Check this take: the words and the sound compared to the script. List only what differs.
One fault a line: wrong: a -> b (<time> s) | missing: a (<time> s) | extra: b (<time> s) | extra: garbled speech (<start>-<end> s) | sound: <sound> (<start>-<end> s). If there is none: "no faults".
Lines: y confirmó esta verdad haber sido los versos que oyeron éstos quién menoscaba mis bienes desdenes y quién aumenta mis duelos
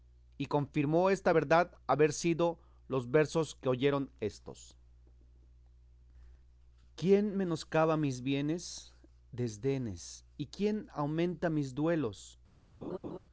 sound: laugh (12.8-13.2 s)